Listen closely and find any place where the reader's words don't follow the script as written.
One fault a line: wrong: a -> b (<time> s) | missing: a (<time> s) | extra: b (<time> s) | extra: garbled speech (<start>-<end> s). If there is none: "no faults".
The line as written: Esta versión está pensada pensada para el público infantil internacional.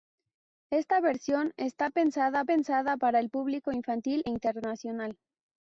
no faults